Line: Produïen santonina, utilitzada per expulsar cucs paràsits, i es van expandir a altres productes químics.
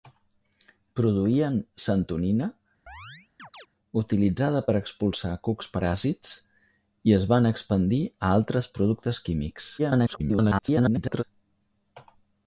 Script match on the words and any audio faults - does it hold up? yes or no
no